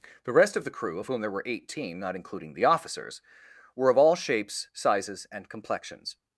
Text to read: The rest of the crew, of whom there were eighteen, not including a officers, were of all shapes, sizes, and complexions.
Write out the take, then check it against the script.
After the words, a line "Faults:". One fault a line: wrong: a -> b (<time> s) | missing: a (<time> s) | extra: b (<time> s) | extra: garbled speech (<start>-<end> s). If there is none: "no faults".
The rest of the crew, of whom there were eighteen, not including the officers, were of all shapes, sizes, and complexions.
Faults:
wrong: a -> the (2.5 s)